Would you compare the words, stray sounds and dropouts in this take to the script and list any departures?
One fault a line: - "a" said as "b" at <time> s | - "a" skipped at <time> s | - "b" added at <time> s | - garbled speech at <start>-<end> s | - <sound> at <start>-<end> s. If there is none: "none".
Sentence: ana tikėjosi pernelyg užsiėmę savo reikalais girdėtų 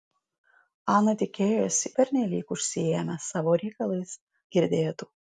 none